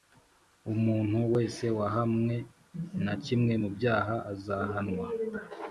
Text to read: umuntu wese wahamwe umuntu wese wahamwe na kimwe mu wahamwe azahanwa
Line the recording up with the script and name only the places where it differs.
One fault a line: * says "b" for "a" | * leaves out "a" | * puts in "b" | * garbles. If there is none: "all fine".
* leaves out "umuntu wese wahamwe"
* says "byaha" for "wahamwe"